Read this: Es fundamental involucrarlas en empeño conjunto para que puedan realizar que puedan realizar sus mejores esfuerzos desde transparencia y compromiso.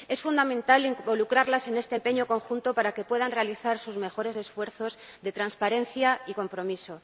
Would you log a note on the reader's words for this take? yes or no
yes